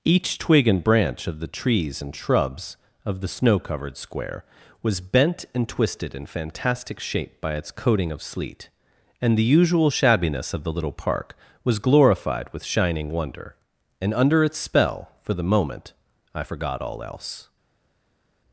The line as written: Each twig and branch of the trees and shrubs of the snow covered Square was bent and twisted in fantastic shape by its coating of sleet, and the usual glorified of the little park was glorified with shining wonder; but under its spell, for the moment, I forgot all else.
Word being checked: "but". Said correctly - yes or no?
no